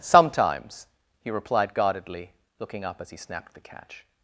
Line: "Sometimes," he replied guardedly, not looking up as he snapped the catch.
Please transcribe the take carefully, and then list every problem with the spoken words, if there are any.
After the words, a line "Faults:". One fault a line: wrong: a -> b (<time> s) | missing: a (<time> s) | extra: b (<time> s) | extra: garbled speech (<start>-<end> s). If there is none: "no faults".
"Sometimes," he replied guardedly, looking up as he snapped the catch.
Faults:
missing: not (2.3 s)